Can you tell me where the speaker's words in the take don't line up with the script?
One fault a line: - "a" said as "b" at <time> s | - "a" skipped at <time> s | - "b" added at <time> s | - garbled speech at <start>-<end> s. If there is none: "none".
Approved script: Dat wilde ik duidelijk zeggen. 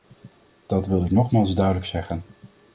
- "nogmaals" added at 1.1 s